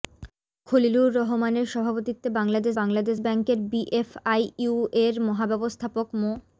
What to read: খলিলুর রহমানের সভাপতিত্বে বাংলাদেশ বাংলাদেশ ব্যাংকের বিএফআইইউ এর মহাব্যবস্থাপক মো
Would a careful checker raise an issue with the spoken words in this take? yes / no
no